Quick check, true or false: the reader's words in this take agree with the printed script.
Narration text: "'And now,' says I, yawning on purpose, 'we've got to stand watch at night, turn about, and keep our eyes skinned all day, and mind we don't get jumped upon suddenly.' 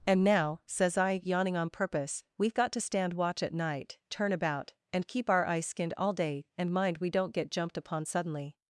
true